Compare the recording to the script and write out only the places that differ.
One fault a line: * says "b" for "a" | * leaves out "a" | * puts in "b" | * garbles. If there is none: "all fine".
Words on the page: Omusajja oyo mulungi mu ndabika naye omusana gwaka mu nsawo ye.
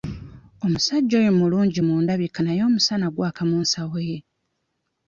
all fine